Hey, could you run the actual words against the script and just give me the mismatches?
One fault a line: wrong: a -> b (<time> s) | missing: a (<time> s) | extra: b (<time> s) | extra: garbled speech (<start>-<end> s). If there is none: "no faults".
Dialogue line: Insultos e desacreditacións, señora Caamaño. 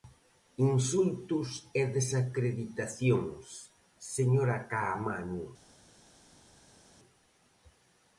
no faults